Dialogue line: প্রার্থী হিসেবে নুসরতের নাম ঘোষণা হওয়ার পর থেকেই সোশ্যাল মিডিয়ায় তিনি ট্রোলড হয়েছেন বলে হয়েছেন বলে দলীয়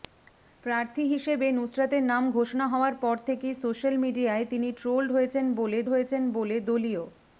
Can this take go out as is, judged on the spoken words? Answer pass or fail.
pass